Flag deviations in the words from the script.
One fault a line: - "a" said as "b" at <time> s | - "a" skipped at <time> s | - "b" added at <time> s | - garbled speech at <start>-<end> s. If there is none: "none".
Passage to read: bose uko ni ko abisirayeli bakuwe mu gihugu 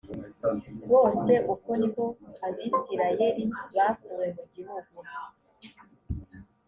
none